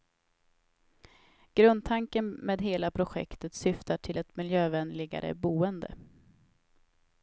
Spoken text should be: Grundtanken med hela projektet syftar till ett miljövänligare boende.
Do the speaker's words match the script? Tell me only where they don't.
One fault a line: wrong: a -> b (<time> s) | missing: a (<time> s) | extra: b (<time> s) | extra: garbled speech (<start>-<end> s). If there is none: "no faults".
no faults